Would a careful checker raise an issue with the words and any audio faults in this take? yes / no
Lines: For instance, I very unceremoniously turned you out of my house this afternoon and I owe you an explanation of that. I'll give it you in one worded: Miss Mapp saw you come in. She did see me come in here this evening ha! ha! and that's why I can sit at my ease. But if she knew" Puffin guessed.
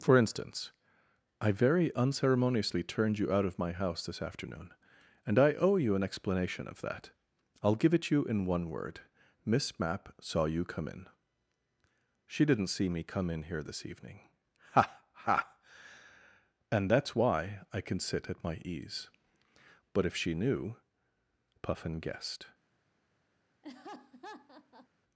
yes